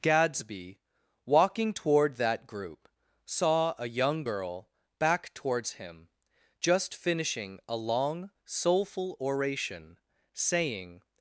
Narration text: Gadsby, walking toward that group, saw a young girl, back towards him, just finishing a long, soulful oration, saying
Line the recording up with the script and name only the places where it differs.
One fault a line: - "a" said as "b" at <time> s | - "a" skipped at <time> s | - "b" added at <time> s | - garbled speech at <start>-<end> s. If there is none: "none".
none